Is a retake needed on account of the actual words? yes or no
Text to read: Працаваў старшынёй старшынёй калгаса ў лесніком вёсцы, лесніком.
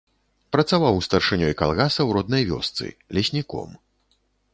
yes